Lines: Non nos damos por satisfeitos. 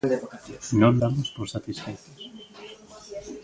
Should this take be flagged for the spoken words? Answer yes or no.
yes